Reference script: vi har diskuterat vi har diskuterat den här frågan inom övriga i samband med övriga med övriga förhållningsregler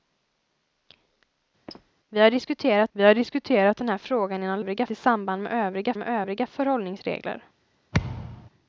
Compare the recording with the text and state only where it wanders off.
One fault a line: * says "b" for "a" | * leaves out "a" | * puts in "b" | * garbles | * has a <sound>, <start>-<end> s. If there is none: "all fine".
* has a squeak, 1.7-1.9 s
* has a thud, 7.9-8.5 s